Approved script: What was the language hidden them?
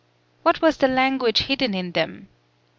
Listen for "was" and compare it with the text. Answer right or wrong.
right